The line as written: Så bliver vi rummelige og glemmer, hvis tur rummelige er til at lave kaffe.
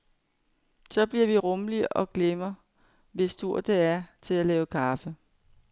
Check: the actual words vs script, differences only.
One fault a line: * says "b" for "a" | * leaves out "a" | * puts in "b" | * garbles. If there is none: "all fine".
* says "det" for "rummelige"